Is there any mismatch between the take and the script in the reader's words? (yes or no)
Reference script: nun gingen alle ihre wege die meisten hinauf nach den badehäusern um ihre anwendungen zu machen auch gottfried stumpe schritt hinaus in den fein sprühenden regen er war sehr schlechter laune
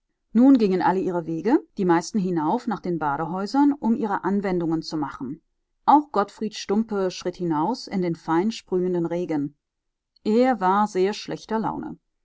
no